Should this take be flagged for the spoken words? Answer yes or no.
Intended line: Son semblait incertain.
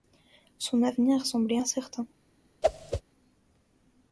yes